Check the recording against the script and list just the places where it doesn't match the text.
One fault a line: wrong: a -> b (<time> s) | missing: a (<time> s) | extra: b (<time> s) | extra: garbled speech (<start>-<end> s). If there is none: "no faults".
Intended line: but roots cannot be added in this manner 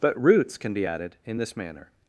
wrong: cannot -> can (0.6 s)